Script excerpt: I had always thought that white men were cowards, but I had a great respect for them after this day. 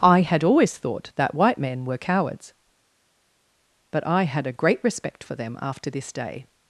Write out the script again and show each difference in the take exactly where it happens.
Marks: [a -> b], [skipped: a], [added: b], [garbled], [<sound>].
I had always thought that white men were cowards, but I had a great respect for them after this day.